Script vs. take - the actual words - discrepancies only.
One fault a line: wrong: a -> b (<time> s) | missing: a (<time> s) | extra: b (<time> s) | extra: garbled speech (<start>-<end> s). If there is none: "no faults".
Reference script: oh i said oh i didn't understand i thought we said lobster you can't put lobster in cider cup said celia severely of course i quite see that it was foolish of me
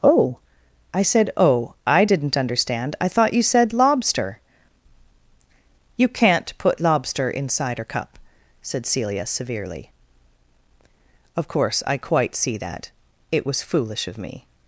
wrong: we -> you (3.3 s)